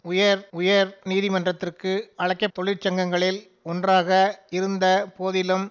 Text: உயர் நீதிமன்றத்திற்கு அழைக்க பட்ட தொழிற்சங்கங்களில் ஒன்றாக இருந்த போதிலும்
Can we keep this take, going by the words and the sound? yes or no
no